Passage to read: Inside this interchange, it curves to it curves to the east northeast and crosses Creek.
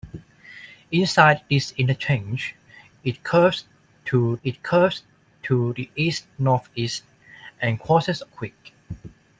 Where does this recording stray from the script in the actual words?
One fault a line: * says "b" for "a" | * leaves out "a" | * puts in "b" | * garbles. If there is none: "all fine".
all fine